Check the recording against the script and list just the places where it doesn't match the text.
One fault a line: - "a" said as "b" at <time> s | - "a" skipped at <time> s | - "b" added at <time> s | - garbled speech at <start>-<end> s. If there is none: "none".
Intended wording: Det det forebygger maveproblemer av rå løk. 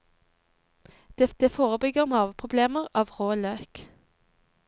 none